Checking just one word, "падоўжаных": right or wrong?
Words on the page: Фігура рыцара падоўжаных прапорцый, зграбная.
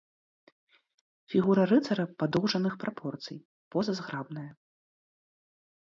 right